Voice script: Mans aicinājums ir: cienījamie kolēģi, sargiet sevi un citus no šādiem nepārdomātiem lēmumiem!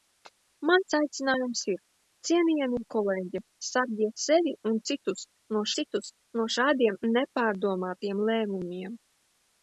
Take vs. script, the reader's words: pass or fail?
fail